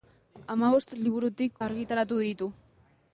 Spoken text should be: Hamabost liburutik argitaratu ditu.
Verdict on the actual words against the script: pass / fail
pass